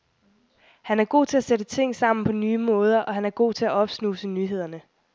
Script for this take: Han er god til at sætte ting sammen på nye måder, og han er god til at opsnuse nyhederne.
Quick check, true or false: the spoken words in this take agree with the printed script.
true